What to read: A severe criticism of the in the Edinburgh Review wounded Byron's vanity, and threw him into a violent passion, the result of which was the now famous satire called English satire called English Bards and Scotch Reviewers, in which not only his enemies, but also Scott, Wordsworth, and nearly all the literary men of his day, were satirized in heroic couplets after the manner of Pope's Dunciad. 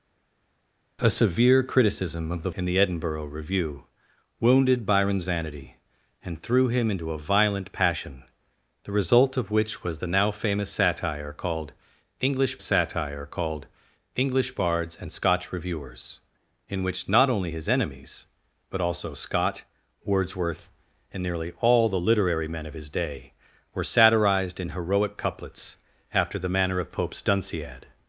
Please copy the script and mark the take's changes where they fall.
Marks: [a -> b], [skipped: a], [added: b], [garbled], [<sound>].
A severe criticism of the in the Edinburgh Review wounded Byron's vanity, and threw him into a violent passion, the result of which was the now famous satire called English satire called English Bards and Scotch Reviewers, in which not only his enemies, but also Scott, Wordsworth, and nearly all the literary men of his day, were satirized in heroic couplets after the manner of Pope's Dunciad.